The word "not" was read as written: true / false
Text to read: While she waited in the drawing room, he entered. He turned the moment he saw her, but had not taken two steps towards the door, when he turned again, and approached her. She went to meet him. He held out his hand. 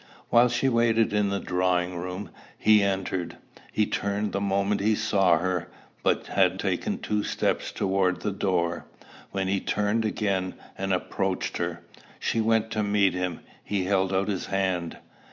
false